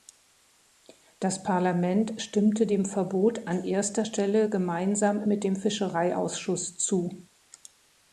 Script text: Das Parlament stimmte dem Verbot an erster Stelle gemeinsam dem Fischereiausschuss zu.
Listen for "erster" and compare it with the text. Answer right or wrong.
right